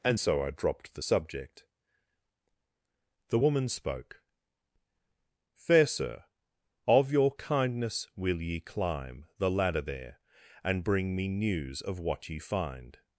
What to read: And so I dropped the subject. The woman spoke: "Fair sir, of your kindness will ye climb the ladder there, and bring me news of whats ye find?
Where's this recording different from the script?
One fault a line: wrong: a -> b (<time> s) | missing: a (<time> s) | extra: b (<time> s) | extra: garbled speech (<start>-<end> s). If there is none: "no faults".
wrong: whats -> what (12.0 s)